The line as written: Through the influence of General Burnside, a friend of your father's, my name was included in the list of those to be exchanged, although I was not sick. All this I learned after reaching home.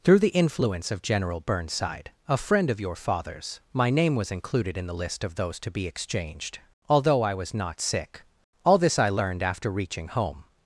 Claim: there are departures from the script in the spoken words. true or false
false